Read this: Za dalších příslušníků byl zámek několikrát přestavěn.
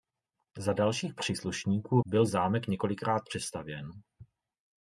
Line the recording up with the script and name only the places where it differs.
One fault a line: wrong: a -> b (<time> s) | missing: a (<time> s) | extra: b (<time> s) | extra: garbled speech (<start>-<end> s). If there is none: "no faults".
no faults